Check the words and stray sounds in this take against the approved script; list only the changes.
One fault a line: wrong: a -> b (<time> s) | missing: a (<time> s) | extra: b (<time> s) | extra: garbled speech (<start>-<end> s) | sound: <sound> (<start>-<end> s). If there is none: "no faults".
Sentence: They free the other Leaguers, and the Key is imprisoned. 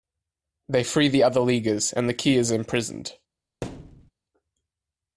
sound: thud (3.6-4.1 s)